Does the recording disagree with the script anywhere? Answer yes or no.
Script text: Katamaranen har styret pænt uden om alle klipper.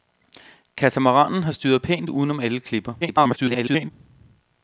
yes